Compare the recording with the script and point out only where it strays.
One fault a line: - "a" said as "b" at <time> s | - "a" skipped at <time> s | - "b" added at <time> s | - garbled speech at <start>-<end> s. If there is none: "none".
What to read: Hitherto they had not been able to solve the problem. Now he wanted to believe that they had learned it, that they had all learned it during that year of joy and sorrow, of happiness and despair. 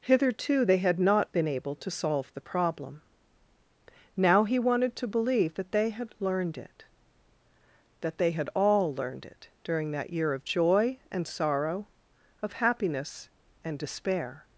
none